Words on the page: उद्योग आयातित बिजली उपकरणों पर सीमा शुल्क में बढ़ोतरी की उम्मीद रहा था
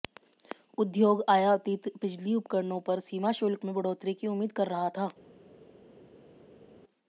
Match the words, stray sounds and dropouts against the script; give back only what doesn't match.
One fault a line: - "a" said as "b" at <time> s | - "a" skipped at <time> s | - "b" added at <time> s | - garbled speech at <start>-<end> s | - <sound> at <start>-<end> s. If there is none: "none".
- "कर" added at 4.5 s